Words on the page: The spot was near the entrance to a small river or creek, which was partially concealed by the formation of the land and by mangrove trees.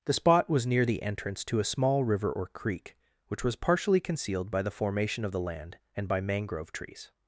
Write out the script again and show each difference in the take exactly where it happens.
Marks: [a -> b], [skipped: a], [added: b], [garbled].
The spot was near the entrance to a small river or creek, which was partially concealed by the formation of the land and by mangrove trees.